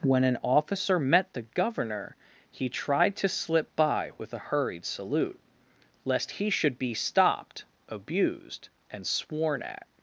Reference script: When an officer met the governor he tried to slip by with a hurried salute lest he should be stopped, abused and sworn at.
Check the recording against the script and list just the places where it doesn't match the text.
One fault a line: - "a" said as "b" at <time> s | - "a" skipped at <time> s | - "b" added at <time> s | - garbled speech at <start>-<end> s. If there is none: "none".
none